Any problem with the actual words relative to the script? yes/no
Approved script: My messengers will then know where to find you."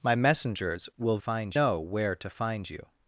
yes